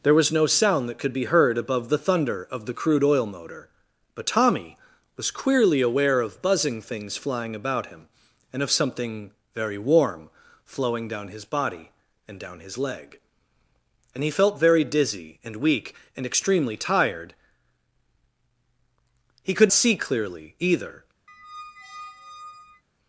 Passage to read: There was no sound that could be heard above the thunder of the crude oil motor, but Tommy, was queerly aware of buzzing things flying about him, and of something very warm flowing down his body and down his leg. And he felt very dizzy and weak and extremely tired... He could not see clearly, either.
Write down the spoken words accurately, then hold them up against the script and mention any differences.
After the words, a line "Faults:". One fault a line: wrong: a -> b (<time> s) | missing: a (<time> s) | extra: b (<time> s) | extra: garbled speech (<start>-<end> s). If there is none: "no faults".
There was no sound that could be heard above the thunder of the crude oil motor, but Tommy, was queerly aware of buzzing things flying about him, and of something very warm flowing down his body and down his leg. And he felt very dizzy and weak and extremely tired... He could see clearly, either.
Faults:
missing: not (19.7 s)